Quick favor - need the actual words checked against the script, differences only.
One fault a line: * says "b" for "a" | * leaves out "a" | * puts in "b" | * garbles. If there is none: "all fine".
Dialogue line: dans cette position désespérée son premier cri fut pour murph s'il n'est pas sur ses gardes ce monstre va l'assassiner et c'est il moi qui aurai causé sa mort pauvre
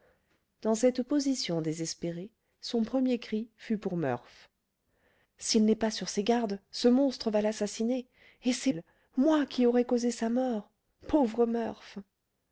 all fine